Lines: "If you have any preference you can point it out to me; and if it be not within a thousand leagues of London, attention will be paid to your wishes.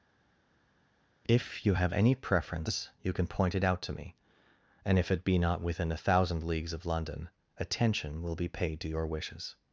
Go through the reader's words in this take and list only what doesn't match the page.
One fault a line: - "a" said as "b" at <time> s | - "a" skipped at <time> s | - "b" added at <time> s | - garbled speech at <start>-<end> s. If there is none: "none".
none